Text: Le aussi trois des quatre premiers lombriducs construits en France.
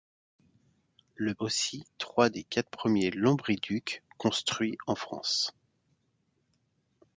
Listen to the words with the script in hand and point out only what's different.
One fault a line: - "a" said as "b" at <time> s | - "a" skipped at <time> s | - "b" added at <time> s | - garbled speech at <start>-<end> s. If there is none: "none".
none